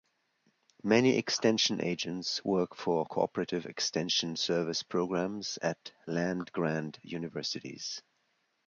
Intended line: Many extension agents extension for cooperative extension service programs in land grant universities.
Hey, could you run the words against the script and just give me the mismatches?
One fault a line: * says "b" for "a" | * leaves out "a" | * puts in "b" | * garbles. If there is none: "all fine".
* says "work" for "extension"
* says "at" for "in"